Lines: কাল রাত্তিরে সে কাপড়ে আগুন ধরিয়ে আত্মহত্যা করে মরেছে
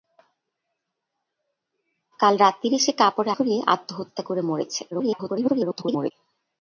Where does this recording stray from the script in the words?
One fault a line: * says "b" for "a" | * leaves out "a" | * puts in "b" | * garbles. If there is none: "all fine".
* leaves out "আগুন"
* garbles